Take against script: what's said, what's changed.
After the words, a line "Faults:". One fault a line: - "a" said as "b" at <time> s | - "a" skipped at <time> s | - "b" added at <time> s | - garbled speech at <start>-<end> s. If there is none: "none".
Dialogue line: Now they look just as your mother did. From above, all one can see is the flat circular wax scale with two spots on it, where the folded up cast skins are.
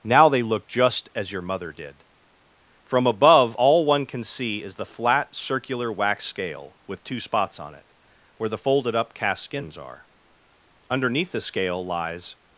Now they look just as your mother did. From above, all one can see is the flat circular wax scale with two spots on it, where the folded up cast skins are. Underneath the scale lies
Faults:
- "Underneath the scale lies" added at 10.9 s